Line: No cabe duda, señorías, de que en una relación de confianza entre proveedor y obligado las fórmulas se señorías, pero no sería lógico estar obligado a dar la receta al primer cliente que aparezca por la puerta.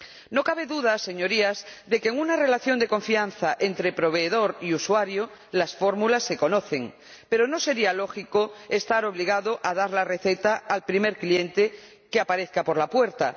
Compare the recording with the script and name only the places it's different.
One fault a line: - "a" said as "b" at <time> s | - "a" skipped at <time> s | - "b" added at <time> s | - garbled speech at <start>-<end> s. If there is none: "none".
- "obligado" said as "usuario" at 4.7 s
- "señorías" said as "conocen" at 6.4 s